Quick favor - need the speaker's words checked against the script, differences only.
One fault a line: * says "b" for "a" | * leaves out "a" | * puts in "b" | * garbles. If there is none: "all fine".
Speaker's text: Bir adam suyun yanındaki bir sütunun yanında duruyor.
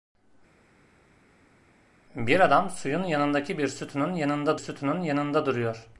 * puts in "sütunun yanında"